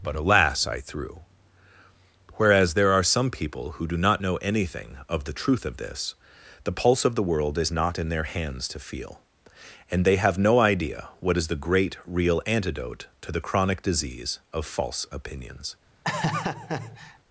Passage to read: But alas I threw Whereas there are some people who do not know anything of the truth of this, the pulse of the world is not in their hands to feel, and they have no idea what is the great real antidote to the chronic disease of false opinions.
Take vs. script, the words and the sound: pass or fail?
fail